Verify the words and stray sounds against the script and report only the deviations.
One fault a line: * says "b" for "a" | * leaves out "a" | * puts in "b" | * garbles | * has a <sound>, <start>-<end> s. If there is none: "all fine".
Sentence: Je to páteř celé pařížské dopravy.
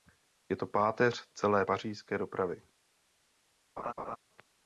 * has a laugh, 3.8-4.2 s